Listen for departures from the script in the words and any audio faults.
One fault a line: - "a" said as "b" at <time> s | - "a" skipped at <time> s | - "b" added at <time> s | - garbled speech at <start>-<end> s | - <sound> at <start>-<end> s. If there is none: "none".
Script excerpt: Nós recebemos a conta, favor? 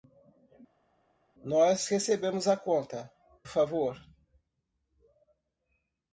none